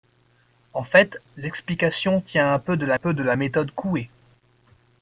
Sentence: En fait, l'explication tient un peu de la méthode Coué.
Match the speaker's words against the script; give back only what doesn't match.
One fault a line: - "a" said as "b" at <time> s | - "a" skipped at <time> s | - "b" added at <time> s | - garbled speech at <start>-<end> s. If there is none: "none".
- "peu de la" added at 2.9 s